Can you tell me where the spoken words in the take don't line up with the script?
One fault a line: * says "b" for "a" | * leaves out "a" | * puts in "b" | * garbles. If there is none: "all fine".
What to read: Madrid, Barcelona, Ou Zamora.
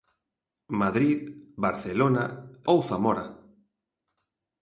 all fine